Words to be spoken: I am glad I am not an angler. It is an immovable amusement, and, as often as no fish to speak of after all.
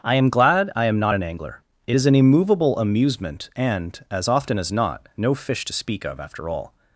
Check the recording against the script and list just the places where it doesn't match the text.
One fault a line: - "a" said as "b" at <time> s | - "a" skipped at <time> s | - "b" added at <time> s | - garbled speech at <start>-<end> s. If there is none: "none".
- "not" added at 4.7 s